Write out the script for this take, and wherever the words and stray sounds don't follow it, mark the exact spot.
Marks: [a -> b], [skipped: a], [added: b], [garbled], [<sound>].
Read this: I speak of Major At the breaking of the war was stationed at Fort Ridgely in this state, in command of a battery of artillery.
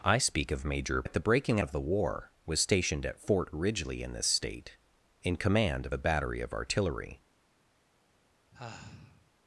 I speak of Major At the breaking of the war was stationed at Fort Ridgely in this state, in command of a battery of artillery. [sigh]